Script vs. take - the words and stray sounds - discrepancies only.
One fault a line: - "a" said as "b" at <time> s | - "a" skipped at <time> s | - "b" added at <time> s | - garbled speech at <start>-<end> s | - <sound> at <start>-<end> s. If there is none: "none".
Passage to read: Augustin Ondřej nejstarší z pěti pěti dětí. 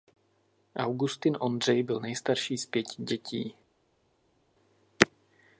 - "byl" added at 1.8 s
- "pěti" skipped at 3.0 s